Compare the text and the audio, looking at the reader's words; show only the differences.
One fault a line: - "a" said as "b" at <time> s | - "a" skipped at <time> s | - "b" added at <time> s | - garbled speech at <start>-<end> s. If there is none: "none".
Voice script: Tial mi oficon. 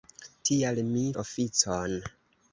none